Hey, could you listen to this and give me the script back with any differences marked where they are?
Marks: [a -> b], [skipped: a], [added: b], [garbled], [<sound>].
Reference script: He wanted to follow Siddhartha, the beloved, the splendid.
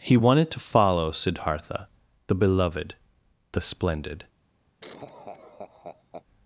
He wanted to follow Siddhartha, the beloved, the splendid. [laugh]